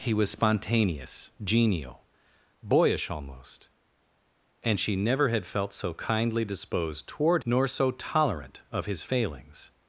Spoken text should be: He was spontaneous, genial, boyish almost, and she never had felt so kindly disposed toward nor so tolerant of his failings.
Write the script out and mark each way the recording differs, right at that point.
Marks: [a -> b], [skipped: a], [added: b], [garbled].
He was spontaneous, genial, boyish almost, and she never had felt so kindly disposed toward nor so tolerant of his failings.